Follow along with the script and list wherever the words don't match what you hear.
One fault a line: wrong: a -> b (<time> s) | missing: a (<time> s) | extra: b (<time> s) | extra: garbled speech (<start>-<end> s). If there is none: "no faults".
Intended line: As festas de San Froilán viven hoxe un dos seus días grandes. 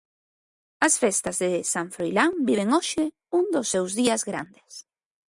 no faults